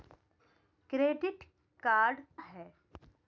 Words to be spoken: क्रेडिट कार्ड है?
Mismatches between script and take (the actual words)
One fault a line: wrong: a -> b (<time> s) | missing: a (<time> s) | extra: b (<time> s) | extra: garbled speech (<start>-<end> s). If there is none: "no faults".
no faults